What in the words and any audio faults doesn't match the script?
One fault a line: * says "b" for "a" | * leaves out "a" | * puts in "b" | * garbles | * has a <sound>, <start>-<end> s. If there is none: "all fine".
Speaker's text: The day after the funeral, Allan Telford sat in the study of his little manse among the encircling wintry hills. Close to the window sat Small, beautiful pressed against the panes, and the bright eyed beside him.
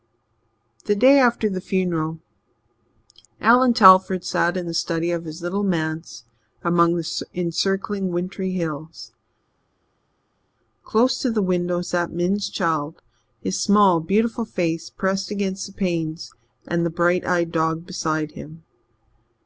* puts in "Min's child his"
* puts in "face"
* puts in "dog"